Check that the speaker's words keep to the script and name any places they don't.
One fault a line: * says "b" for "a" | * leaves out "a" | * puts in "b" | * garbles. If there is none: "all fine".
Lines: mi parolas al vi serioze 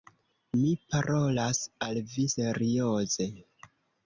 all fine